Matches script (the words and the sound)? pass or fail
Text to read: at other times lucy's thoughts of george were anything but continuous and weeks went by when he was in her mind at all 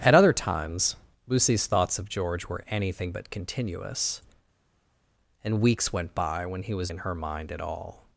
pass